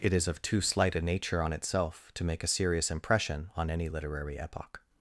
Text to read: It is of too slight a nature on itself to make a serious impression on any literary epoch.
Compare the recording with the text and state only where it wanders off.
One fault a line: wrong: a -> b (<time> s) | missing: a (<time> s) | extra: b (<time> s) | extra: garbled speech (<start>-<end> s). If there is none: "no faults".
no faults